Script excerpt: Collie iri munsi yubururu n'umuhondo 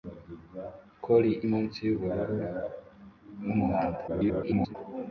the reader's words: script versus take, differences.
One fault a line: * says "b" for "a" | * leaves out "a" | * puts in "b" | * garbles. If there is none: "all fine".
* leaves out "iri"
* garbles